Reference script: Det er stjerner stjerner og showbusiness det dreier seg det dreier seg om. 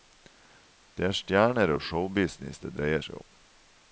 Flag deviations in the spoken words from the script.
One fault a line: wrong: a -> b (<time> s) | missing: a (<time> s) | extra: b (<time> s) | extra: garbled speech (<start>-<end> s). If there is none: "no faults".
missing: stjerner (1.7 s)
missing: det dreier seg (3.2 s)